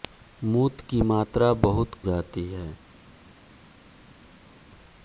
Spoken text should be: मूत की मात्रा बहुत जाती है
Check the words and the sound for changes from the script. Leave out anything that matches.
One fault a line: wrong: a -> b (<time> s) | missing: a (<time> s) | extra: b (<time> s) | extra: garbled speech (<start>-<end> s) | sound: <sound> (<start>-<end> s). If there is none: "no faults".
no faults